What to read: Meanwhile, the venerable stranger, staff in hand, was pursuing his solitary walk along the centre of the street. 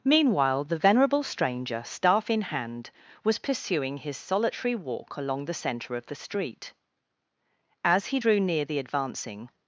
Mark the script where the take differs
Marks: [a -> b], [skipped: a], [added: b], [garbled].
Meanwhile, the venerable stranger, staff in hand, was pursuing his solitary walk along the centre of the street. [added: As he drew near the advancing]